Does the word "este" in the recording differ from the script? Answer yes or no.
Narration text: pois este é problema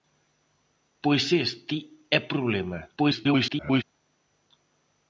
no